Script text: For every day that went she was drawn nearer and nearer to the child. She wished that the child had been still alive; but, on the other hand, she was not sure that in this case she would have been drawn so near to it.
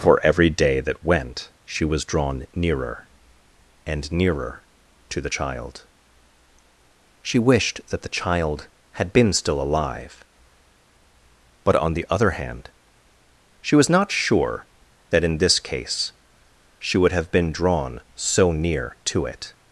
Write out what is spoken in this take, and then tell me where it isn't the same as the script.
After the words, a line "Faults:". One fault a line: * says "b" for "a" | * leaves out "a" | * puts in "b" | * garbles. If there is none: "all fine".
For every day that went she was drawn nearer and nearer to the child. She wished that the child had been still alive; but, on the other hand, she was not sure that in this case she would have been drawn so near to it.
Faults:
all fine